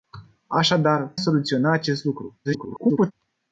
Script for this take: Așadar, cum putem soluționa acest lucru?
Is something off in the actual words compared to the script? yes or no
yes